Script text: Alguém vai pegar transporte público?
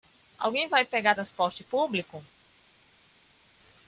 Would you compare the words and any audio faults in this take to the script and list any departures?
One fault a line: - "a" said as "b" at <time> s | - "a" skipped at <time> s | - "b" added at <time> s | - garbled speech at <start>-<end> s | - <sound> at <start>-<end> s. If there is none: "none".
none